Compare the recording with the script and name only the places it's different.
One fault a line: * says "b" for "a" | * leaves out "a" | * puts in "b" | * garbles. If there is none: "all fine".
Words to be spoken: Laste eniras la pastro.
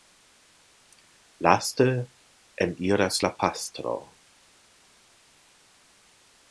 all fine